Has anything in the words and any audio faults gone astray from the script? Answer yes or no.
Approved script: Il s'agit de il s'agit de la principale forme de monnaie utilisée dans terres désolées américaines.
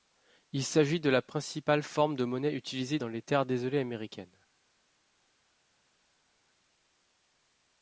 yes